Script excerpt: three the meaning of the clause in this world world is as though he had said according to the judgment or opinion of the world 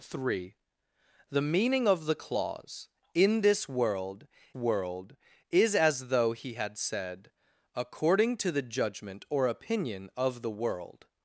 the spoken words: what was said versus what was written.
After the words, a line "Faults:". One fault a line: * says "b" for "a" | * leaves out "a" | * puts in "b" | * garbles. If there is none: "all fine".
three the meaning of the clause in this world world is as though he had said according to the judgment or opinion of the world
Faults:
all fine